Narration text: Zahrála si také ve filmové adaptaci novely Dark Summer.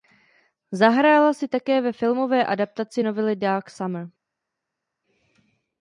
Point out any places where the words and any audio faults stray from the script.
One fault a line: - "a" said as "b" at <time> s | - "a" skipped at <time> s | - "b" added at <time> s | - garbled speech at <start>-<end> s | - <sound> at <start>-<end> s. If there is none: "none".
none